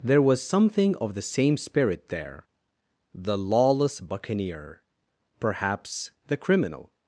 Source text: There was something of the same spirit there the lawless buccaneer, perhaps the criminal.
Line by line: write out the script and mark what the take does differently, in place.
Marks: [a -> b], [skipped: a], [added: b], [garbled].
There was something of the same spirit there the lawless buccaneer, perhaps the criminal.